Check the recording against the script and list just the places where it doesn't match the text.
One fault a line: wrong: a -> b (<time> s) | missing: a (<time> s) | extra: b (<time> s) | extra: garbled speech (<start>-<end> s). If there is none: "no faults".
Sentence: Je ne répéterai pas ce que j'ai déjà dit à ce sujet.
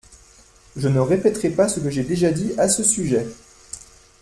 no faults